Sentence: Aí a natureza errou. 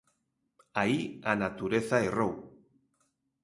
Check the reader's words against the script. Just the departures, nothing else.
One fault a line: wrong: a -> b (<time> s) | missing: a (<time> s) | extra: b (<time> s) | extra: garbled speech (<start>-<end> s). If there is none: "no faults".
no faults